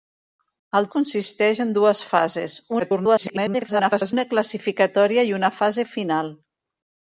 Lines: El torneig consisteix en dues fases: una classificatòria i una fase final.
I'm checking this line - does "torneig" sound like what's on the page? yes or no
no